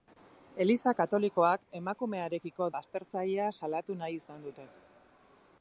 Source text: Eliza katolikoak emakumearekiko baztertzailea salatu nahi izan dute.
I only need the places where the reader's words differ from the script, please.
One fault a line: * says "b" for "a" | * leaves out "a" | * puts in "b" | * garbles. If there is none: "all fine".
all fine